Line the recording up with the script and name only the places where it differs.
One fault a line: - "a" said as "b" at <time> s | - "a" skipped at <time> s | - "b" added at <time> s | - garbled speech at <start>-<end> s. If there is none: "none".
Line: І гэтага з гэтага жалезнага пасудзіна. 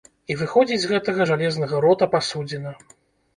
- "гэтага" said as "выходзіць" at 0.4 s
- "рота" added at 1.9 s